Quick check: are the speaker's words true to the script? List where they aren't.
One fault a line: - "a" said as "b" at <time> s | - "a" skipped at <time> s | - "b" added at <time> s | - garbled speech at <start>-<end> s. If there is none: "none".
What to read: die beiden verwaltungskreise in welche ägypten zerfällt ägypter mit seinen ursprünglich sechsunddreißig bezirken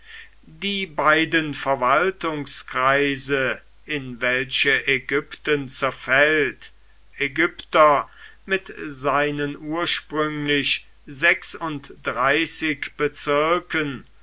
none